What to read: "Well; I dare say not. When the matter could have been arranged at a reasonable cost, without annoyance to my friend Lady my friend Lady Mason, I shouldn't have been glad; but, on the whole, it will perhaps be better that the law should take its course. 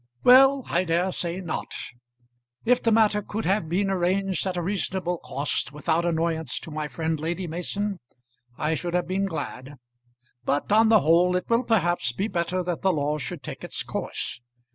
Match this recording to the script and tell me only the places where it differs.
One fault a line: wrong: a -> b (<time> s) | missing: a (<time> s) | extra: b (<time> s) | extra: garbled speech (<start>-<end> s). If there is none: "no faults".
wrong: When -> If (2.6 s)
missing: my friend Lady (7.5 s)
wrong: shouldn't -> should (8.7 s)